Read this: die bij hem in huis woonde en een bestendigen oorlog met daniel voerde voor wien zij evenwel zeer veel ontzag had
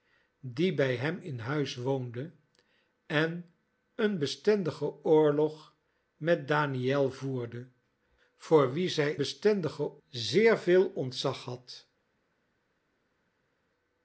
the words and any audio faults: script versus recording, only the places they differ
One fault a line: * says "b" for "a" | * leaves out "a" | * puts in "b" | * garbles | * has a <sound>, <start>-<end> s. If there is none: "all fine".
* says "bestendigen" for "evenwel"